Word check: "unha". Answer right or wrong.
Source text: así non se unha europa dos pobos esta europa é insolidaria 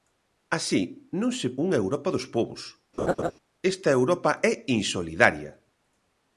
right